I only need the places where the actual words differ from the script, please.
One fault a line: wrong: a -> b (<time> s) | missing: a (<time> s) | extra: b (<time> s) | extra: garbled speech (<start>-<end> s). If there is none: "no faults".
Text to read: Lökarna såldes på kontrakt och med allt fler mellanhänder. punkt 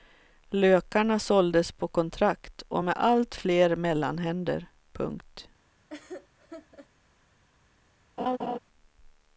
no faults